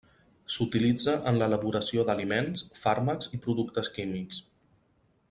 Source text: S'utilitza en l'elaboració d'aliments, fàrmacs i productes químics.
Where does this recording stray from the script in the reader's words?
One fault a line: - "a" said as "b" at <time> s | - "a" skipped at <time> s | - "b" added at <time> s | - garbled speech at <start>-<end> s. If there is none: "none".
none